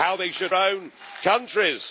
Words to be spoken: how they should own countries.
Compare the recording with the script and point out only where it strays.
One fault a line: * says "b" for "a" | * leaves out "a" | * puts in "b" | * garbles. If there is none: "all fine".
all fine